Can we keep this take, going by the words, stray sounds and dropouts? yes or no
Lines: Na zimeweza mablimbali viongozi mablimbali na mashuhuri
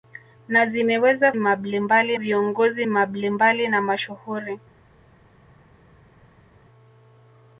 yes